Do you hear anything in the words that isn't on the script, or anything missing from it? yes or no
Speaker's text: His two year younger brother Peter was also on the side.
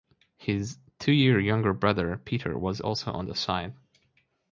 no